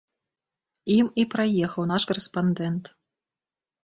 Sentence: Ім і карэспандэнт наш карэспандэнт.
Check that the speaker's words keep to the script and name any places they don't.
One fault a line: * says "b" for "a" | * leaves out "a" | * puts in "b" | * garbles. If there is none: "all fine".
* says "праехаў" for "карэспандэнт"